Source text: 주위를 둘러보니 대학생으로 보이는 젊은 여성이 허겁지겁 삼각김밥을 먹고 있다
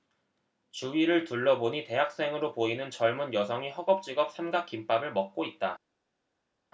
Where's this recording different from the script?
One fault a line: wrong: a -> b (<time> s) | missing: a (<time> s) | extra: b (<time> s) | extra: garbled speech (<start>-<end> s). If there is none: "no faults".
no faults